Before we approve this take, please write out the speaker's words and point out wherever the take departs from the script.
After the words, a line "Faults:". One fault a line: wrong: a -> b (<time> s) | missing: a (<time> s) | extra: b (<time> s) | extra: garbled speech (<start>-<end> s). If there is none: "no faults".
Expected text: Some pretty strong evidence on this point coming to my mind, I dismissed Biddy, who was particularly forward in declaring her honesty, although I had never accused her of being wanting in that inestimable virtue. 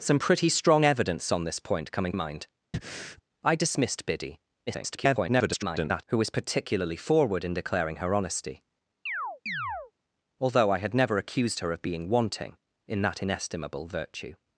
Some pretty strong evidence on this point coming mind, I dismissed Biddy, [garbled] who was particularly forward in declaring her honesty, although I had never accused her of being wanting in that inestimable virtue.
Faults:
missing: to my (2.1 s)
extra: garbled speech (4.7-6.0 s)